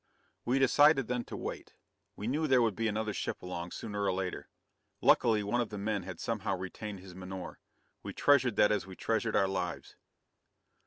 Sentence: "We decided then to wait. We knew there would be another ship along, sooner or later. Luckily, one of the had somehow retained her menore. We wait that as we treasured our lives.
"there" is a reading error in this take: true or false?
false